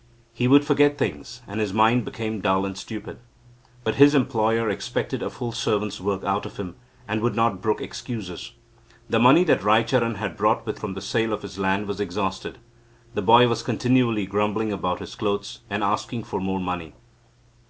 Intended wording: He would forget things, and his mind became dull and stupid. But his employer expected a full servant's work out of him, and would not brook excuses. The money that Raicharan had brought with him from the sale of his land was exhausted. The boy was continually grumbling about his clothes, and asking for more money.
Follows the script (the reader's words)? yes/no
no